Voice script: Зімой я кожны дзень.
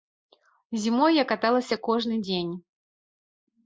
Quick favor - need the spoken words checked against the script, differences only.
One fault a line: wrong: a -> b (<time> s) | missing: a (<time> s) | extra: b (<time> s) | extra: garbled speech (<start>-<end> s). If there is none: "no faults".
extra: каталася (1.3 s)